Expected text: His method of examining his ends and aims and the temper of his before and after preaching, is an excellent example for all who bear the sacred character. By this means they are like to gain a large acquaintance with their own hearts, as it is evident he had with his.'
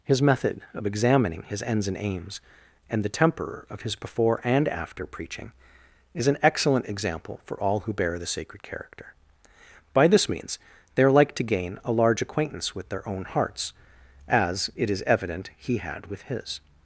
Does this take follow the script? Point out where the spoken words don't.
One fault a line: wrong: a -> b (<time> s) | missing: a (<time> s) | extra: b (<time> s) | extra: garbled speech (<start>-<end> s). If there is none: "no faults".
no faults